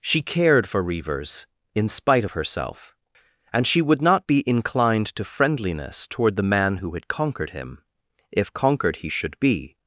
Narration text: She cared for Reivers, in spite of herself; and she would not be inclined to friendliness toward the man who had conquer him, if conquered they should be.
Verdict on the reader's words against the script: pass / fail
fail